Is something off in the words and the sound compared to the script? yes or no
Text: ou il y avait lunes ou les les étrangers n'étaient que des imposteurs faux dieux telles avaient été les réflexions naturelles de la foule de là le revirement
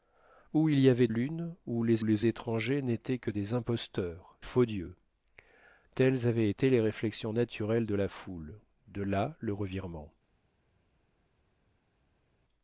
no